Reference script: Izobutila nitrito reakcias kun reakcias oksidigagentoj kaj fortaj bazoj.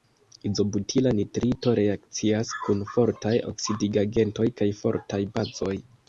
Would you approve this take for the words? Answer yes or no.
no